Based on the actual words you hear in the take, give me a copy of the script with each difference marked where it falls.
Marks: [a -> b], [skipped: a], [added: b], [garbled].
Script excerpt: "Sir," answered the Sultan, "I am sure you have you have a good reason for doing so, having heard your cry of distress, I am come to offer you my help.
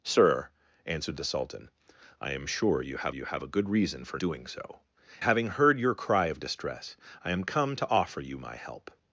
"Sir," answered the Sultan, "I am sure you have you have a good reason for doing so, having heard your cry of distress, I am come to offer you my help.